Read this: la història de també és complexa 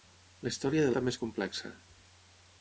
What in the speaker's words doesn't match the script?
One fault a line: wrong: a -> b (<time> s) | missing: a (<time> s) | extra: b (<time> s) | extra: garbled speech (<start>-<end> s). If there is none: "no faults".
no faults